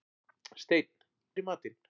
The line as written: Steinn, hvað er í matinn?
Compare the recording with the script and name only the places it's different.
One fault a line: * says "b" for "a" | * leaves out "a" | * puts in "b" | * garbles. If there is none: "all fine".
* leaves out "hvað"